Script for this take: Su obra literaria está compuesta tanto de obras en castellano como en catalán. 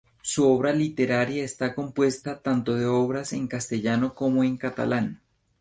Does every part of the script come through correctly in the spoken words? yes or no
yes